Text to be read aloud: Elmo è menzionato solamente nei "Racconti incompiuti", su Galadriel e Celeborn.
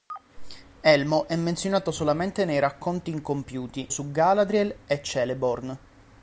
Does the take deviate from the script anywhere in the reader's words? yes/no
no